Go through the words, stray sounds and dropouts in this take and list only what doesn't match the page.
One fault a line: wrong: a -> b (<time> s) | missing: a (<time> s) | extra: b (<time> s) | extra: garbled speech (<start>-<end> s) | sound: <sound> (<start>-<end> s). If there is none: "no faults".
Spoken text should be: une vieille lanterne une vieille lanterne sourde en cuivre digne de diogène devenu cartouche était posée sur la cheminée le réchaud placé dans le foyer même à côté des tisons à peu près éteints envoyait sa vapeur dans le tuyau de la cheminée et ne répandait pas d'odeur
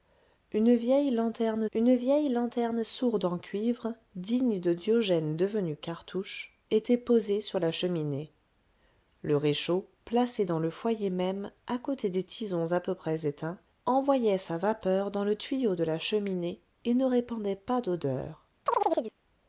sound: chirp (18.7-19.2 s)